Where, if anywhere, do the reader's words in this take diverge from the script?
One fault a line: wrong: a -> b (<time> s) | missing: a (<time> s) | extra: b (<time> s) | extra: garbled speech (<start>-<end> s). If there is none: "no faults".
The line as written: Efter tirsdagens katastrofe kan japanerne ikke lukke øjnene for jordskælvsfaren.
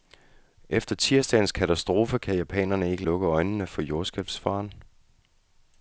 no faults